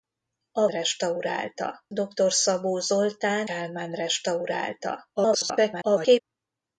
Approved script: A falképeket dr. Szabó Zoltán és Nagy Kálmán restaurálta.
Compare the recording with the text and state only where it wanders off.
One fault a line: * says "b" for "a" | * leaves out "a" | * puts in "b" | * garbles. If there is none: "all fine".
* says "restaurálta" for "falképeket"
* leaves out "és Nagy"
* garbles